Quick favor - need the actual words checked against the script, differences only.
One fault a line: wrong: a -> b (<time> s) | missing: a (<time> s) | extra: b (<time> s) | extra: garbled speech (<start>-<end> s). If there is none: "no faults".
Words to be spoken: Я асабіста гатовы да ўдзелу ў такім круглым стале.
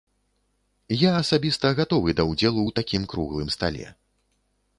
no faults